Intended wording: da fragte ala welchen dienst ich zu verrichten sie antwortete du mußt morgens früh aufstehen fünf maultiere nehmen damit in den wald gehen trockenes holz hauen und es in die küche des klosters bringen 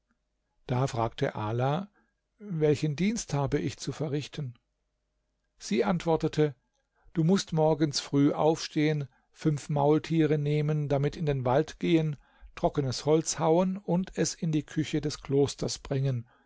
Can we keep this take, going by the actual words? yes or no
no